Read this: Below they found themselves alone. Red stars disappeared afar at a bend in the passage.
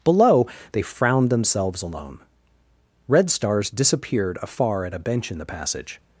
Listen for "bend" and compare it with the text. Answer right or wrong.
wrong